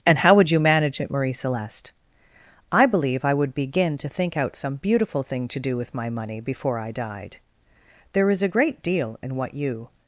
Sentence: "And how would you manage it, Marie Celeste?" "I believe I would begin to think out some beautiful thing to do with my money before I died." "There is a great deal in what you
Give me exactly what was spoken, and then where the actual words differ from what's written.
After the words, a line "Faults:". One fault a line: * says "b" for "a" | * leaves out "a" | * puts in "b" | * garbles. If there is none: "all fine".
"And how would you manage it, Marie Celeste?" "I believe I would begin to think out some beautiful thing to do with my money before I died." "There is a great deal in what you
Faults:
all fine